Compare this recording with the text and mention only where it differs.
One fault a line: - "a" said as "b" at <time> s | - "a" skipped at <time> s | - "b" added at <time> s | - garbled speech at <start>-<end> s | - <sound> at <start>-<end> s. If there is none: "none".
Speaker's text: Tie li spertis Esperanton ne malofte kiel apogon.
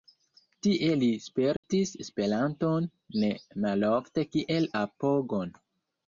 - dropout at 1.6-1.6 s